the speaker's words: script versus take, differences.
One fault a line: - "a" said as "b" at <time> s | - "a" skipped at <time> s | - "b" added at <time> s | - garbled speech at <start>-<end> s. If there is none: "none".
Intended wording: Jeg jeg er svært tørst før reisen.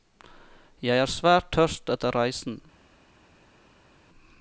- "jeg" skipped at 1.0 s
- "før" said as "etter" at 2.0 s